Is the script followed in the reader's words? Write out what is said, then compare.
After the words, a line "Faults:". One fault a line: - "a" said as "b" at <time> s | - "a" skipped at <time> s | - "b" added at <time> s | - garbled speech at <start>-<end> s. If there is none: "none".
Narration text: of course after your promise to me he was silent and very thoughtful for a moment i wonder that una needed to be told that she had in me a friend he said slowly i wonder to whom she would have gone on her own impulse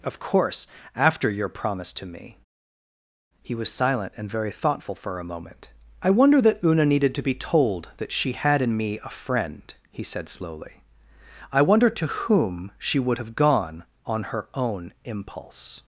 of course after your promise to me he was silent and very thoughtful for a moment i wonder that una needed to be told that she had in me a friend he said slowly i wonder to whom she would have gone on her own impulse
Faults:
none